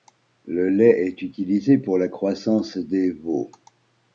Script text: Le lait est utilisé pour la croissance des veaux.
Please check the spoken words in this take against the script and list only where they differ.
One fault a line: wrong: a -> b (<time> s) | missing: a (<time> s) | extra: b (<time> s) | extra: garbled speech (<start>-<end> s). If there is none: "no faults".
no faults